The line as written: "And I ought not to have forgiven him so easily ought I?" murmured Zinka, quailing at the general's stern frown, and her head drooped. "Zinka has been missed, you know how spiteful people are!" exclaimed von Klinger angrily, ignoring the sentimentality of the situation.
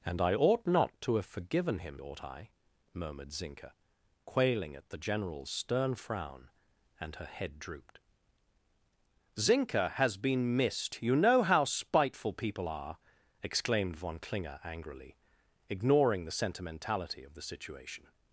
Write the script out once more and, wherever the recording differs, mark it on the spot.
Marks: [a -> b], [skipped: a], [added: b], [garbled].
"And I ought not to have forgiven him [skipped: so easily] ought I?" murmured Zinka, quailing at the general's stern frown, and her head drooped. "Zinka has been missed, you know how spiteful people are!" exclaimed von Klinger angrily, ignoring the sentimentality of the situation.